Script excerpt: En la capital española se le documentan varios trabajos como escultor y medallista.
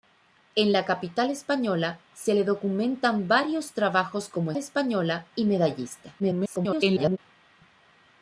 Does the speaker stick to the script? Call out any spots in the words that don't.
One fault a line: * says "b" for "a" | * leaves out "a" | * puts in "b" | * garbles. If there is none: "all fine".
* says "española" for "escultor"
* garbles